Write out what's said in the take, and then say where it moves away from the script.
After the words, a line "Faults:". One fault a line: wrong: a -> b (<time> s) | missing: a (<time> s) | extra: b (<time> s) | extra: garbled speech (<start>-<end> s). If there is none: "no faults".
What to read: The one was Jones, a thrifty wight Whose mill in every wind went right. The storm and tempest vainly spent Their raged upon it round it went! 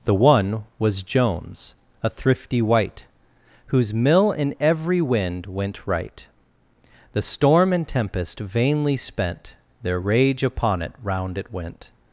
The one was Jones, a thrifty wight Whose mill in every wind went right. The storm and tempest vainly spent Their rage upon it round it went!
Faults:
wrong: raged -> rage (10.0 s)